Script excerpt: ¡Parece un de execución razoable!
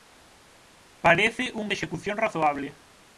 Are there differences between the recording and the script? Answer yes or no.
no